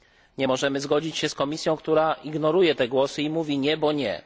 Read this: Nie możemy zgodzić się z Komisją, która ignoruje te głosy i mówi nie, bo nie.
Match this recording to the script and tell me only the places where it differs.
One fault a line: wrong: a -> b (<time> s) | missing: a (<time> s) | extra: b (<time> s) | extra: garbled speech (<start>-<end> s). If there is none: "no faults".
no faults